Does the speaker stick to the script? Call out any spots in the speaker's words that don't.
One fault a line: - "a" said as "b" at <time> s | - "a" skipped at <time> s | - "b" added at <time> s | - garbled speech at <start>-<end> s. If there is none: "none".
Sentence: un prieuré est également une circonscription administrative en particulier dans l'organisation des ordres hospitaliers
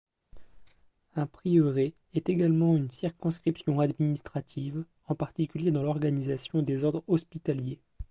none